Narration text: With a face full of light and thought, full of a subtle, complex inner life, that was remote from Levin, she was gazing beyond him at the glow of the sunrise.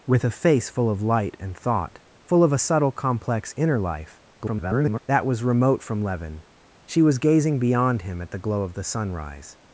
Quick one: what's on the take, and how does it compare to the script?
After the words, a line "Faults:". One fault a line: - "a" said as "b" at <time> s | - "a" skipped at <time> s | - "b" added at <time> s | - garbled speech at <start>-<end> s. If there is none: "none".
With a face full of light and thought, full of a subtle, complex inner life, [garbled] that was remote from Levin, she was gazing beyond him at the glow of the sunrise.
Faults:
- garbled speech at 4.4-5.0 s